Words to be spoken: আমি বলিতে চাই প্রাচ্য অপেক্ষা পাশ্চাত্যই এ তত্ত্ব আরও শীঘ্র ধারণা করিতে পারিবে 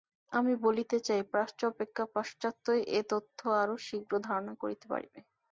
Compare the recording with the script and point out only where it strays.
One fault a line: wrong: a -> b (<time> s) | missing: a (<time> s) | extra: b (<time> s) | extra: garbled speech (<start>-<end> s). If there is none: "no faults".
no faults